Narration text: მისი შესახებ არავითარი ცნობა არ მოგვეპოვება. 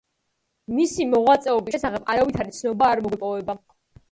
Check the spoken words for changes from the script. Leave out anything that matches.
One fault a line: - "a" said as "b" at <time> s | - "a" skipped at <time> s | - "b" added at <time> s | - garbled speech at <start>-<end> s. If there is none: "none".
- "მოღვაწეობის" added at 1.1 s